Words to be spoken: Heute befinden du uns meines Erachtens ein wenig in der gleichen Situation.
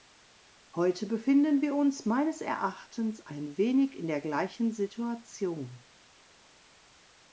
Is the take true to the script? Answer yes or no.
no